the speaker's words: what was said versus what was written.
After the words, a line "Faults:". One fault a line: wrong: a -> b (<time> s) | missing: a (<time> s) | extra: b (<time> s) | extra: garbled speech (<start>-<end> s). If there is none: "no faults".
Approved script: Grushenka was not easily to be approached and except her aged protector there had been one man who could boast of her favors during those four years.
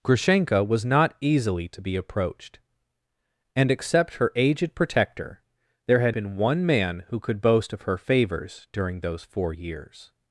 Grushenka was not easily to be approached and except her aged protector there had been one man who could boast of her favors during those four years.
Faults:
no faults